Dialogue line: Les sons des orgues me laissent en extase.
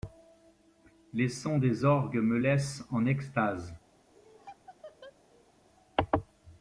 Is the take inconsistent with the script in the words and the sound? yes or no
yes